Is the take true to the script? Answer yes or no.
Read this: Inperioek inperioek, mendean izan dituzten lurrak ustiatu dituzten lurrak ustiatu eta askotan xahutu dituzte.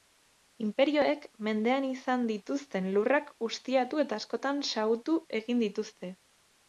no